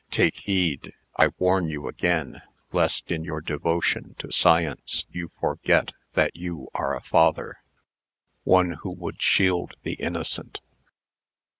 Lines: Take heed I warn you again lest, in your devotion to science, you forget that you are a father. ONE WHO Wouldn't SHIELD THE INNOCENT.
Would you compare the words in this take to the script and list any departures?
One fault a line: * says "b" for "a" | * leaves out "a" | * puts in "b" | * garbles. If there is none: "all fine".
* says "WOULD" for "Wouldn't"